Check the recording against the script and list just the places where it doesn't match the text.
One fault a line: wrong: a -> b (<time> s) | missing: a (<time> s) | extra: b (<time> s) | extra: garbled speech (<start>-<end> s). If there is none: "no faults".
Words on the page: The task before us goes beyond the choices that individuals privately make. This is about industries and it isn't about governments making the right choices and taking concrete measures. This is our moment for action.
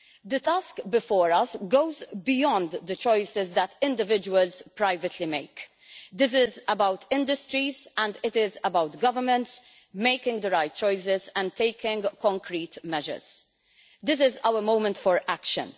wrong: isn't -> is (8.3 s)